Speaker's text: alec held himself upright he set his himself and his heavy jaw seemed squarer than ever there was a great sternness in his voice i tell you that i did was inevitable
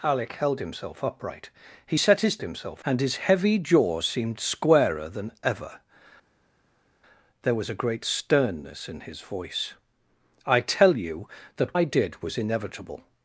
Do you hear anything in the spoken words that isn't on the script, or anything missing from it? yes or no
no